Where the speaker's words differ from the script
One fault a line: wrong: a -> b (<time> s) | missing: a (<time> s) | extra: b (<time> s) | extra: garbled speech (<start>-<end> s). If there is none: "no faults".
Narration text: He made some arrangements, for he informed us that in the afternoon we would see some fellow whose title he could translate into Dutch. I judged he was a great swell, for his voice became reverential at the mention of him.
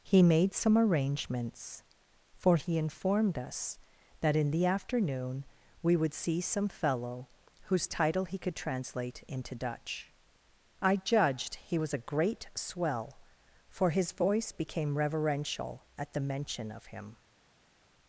no faults